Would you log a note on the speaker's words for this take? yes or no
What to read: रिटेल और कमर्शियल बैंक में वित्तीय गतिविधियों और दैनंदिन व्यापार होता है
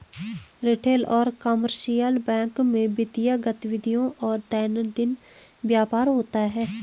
no